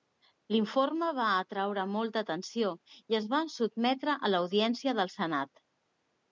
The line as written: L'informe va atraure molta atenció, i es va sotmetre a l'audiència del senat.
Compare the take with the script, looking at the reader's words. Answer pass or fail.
pass